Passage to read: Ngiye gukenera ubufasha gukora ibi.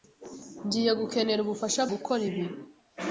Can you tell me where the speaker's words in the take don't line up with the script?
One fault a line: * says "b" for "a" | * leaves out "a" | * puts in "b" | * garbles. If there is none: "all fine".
all fine